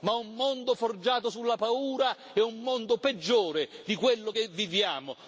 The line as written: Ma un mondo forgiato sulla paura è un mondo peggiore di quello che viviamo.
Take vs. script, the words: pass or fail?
pass